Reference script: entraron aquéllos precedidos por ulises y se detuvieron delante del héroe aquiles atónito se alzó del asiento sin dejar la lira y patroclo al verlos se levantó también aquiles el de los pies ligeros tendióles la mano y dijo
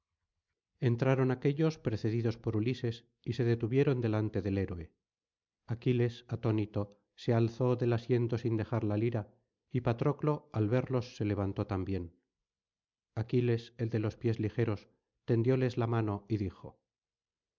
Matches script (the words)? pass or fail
pass